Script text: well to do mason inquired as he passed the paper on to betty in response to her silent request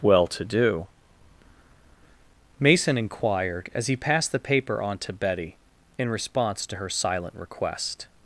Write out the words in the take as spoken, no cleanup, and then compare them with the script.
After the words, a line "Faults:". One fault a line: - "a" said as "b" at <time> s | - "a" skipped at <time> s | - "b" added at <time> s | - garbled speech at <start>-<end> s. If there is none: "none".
well to do mason inquired as he passed the paper on to betty in response to her silent request
Faults:
none